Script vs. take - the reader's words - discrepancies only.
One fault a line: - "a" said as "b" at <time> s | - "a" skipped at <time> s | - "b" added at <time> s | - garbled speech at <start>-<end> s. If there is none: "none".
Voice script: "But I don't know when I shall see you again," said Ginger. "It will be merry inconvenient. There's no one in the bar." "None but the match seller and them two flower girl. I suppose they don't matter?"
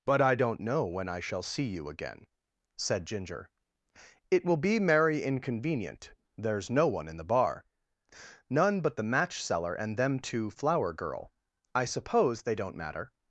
none